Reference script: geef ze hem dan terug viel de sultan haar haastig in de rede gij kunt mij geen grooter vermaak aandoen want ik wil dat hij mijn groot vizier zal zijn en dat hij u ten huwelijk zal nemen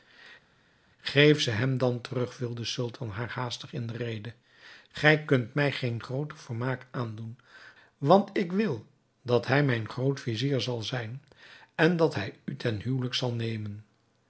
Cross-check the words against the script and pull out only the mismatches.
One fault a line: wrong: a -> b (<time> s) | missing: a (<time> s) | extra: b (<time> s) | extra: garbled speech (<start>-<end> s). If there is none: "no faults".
no faults